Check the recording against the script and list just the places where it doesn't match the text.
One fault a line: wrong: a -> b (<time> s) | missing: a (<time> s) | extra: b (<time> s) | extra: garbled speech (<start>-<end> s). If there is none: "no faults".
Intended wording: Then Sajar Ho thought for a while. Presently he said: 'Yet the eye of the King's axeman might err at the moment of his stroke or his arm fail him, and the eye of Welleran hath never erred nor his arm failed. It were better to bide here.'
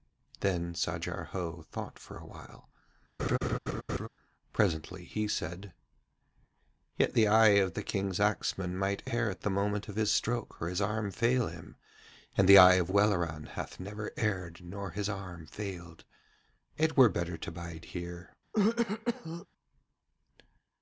no faults